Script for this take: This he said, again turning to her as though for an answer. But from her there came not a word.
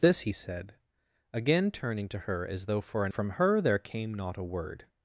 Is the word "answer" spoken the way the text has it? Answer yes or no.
no